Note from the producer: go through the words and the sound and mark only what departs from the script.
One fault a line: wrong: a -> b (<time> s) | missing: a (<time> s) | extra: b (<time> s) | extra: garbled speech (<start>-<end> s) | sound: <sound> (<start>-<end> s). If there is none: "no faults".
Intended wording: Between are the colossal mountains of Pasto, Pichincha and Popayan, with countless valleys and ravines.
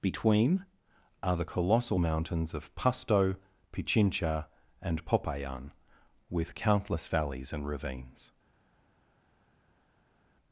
no faults